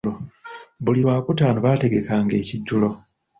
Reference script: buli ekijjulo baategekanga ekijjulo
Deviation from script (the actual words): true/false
true